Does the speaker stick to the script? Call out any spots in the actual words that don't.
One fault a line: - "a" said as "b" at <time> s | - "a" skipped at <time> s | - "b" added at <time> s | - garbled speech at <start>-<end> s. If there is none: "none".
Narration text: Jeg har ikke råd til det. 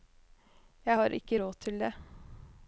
none